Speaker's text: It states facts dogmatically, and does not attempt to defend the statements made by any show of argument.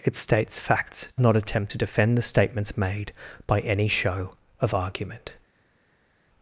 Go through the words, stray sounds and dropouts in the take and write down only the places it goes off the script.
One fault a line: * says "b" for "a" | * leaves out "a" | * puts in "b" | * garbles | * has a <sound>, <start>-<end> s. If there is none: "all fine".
* leaves out "dogmatically and does"